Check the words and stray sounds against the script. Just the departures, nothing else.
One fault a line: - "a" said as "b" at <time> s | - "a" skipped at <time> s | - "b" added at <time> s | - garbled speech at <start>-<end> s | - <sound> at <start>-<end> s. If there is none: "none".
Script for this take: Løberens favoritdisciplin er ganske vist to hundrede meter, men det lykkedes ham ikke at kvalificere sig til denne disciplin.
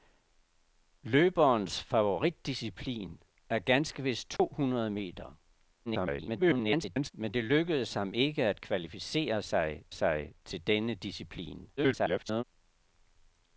- dropout at 4.4-4.4 s
- garbled speech at 5.9-7.1 s
- "sig" added at 9.9 s
- garbled speech at 11.8-12.4 s